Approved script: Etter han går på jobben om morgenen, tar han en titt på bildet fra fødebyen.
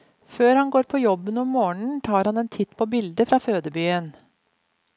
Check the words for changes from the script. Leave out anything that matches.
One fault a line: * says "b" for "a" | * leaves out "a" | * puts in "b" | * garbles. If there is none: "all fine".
* says "Før" for "Etter"